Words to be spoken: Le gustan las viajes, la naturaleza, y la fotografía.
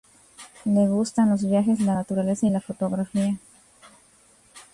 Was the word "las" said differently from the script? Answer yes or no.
yes